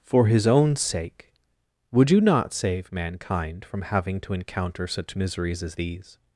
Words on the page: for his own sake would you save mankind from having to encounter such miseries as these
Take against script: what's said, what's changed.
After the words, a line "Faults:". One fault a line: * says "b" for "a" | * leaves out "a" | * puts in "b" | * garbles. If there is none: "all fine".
for his own sake would you not save mankind from having to encounter such miseries as these
Faults:
* puts in "not"